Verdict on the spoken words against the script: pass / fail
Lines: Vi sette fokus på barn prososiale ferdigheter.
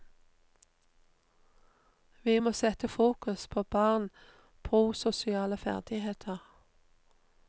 fail